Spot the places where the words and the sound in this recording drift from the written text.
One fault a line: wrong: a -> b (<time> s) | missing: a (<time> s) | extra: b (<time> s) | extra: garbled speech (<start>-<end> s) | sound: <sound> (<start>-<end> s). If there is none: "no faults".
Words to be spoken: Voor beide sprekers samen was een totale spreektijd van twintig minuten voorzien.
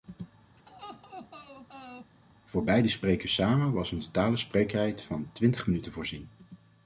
sound: laugh (0.6-2.1 s)